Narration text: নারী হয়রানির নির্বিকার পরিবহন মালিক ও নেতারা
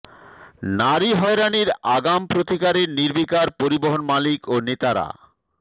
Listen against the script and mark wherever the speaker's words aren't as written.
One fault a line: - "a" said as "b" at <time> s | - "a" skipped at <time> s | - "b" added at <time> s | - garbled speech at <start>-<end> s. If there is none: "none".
- "আগাম প্রতিকারে" added at 1.9 s